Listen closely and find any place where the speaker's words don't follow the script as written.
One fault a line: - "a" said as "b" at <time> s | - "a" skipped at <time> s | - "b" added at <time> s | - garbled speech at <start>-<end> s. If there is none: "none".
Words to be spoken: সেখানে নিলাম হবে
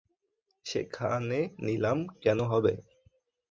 - "কেন" added at 2.2 s